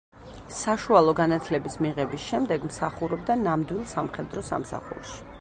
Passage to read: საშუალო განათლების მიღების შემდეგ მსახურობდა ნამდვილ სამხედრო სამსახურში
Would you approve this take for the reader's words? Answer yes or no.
yes